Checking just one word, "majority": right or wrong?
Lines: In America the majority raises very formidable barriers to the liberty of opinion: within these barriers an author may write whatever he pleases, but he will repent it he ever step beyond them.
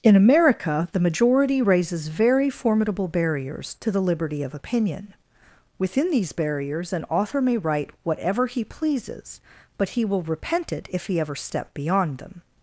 right